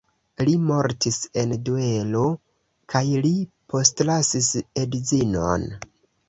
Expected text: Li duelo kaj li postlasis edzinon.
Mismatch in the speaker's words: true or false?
true